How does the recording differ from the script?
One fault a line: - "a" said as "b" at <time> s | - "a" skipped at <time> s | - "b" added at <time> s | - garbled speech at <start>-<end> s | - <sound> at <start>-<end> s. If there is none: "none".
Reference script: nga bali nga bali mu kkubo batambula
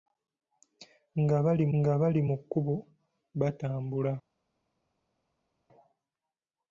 none